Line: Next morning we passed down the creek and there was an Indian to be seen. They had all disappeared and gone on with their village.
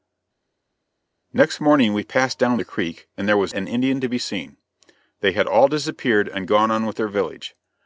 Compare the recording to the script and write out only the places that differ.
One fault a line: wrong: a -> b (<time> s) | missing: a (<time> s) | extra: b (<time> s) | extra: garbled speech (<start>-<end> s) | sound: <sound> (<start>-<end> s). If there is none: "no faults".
no faults